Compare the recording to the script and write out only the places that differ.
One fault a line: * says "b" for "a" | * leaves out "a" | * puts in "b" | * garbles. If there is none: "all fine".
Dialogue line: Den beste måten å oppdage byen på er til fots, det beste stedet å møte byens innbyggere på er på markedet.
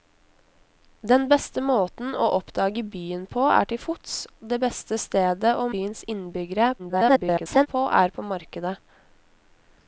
* leaves out "møte"
* garbles